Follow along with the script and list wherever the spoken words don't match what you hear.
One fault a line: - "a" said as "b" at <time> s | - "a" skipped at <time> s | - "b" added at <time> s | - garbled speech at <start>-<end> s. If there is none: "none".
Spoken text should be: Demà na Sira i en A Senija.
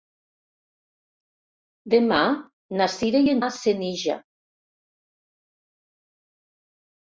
none